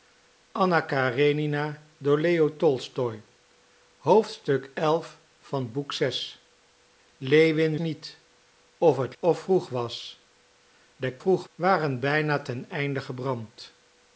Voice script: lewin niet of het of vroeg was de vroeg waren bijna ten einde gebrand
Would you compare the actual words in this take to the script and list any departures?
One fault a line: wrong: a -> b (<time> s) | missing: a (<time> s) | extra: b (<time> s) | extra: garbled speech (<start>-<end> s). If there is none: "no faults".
no faults